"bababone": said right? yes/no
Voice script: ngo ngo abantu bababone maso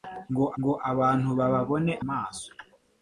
yes